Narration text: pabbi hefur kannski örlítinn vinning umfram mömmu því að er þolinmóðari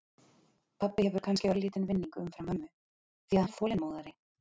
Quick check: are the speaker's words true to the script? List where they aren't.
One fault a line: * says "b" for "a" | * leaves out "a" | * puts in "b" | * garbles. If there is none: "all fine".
all fine